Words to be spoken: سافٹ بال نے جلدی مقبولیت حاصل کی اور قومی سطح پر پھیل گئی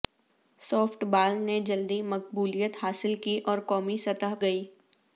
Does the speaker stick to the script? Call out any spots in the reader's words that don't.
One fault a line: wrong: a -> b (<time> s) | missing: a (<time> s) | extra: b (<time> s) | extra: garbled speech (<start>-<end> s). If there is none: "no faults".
missing: پر پھیل (4.3 s)